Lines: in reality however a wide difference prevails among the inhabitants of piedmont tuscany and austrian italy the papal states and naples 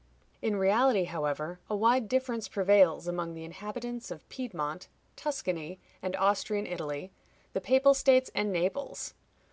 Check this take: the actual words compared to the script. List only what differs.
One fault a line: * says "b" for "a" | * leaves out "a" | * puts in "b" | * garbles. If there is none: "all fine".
all fine